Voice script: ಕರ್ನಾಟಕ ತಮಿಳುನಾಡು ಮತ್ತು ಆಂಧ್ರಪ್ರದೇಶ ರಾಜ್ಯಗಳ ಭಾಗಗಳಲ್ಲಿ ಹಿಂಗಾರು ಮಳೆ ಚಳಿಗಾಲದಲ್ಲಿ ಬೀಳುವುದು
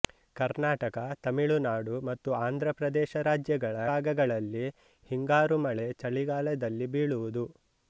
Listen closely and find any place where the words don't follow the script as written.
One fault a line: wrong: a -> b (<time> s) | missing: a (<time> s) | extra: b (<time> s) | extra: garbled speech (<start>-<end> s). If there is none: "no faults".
no faults